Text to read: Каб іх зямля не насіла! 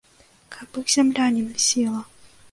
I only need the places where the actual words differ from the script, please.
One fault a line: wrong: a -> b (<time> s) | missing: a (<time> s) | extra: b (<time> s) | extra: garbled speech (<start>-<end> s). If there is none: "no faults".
no faults